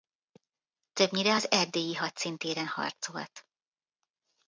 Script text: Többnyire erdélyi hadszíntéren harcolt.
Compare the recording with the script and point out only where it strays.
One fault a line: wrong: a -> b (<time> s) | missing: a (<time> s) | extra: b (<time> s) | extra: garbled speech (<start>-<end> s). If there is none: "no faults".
extra: az (1.3 s)